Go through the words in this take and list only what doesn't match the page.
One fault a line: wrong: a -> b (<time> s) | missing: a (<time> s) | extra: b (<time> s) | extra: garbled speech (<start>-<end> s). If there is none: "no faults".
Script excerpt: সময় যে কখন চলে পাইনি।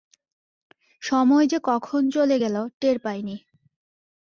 extra: গেল টের (2.4 s)